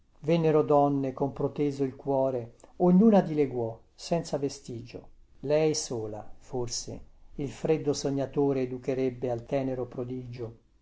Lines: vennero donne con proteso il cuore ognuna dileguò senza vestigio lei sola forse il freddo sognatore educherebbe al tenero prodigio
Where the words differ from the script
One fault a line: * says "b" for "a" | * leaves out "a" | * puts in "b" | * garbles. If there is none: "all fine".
all fine